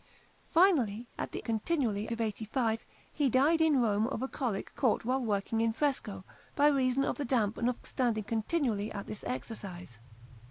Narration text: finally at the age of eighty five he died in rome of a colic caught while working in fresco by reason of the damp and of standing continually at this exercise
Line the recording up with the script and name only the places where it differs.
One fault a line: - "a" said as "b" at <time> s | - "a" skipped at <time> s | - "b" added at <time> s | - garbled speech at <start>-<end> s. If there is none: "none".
- "age" said as "continually" at 1.4 s